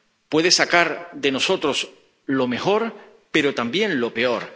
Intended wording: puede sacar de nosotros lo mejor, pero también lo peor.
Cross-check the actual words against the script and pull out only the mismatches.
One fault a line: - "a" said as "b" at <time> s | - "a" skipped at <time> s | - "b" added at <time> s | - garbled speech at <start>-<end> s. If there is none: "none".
none